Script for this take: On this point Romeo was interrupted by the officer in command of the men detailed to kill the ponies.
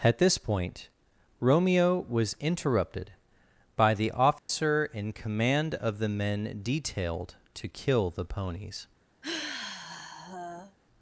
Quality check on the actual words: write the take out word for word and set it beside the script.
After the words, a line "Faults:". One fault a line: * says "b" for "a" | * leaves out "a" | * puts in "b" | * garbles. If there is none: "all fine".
At this point Romeo was interrupted by the officer in command of the men detailed to kill the ponies.
Faults:
* says "At" for "On"